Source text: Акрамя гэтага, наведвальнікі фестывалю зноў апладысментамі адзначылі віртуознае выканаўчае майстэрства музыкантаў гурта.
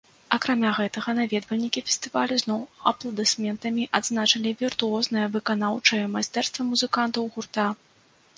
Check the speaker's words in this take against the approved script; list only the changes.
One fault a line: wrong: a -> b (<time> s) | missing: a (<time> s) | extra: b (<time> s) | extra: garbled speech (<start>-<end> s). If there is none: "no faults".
no faults